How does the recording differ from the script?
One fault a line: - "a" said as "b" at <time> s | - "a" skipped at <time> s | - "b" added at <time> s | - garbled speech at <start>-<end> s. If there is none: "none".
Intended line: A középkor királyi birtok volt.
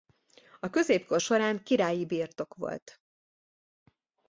- "során" added at 1.2 s